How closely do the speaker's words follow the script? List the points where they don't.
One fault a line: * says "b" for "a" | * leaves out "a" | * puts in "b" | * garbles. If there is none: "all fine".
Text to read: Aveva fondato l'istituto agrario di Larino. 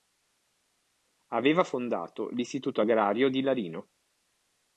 all fine